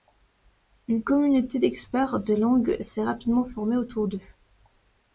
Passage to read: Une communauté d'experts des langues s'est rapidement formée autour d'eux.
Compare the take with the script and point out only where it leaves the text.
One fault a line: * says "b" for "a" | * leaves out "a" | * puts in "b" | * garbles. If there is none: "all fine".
all fine